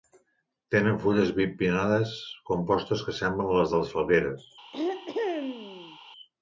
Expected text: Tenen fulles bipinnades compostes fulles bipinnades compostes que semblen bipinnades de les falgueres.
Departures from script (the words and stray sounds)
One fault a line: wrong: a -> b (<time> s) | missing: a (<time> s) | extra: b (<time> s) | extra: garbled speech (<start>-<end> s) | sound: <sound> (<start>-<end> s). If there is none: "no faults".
missing: fulles bipinnades compostes (3.1 s)
wrong: bipinnades -> les (3.6 s)
sound: throat clearing (4.7-6.0 s)